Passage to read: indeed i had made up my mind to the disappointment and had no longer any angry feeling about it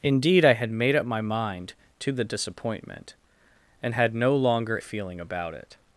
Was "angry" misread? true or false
true